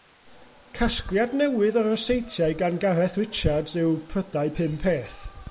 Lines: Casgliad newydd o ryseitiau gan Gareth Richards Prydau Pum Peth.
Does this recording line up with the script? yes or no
no